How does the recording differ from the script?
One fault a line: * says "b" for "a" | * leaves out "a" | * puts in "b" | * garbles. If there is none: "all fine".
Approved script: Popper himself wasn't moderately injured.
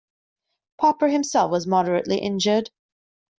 * says "was" for "wasn't"